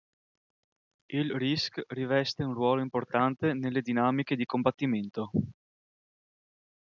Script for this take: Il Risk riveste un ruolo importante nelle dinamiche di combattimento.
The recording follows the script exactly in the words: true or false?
true